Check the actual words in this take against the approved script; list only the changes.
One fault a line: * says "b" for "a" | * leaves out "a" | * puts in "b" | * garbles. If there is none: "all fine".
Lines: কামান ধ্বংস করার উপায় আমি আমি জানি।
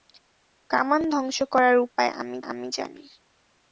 all fine